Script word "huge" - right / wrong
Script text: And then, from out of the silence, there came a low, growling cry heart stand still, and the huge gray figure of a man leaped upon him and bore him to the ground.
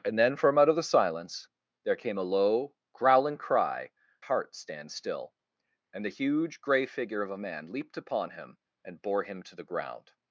right